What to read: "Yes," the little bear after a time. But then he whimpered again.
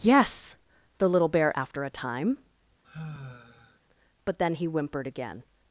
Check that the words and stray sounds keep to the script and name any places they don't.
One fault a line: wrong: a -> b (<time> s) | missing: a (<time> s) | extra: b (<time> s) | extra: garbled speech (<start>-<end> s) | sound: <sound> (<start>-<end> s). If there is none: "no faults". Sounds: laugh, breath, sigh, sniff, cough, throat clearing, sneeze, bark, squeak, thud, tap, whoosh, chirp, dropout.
sound: sigh (2.8-3.8 s)